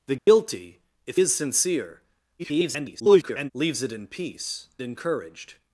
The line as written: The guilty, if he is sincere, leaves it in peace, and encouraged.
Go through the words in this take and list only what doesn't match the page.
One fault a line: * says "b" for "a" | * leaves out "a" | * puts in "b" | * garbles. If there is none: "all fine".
* leaves out "he"
* garbles
* leaves out "and"